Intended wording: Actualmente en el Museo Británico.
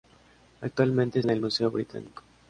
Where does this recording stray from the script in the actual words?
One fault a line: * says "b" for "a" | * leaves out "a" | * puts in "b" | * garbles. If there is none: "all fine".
all fine